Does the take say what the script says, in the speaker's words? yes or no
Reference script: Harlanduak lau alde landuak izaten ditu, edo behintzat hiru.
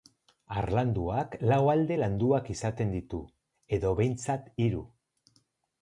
yes